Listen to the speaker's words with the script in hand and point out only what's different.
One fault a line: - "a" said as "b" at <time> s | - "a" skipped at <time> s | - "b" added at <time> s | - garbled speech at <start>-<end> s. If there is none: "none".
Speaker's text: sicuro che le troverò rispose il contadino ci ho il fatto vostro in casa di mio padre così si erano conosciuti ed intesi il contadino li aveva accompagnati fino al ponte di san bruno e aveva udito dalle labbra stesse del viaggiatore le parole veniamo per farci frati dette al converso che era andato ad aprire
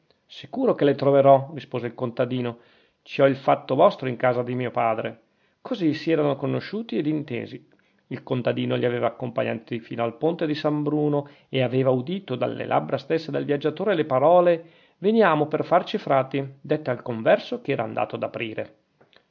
none